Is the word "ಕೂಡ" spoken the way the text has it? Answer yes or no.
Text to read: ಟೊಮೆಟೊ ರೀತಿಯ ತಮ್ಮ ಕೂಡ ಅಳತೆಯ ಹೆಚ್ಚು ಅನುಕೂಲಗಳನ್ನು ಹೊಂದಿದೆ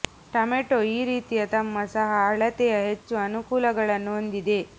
no